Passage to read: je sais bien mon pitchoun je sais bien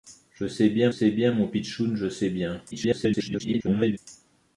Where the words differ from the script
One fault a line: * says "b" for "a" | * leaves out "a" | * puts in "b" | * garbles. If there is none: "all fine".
* puts in "sais bien"
* garbles